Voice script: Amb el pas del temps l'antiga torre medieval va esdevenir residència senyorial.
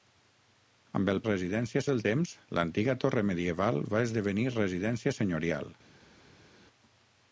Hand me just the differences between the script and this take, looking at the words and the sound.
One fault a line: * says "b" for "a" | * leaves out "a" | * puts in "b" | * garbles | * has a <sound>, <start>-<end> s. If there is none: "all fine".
* says "residència" for "pas"